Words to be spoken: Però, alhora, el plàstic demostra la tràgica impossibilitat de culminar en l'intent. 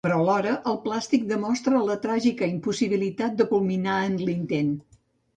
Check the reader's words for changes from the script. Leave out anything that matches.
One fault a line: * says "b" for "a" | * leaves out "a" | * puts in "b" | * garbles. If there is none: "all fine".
all fine